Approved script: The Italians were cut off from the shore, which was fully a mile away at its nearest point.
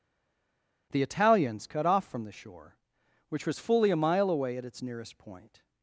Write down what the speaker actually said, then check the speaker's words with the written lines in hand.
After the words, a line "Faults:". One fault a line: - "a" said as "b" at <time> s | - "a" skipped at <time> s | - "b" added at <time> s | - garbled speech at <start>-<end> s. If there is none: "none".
The Italians cut off from the shore, which was fully a mile away at its nearest point.
Faults:
- "were" skipped at 1.7 s